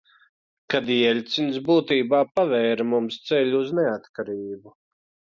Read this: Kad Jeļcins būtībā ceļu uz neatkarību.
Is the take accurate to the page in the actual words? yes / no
no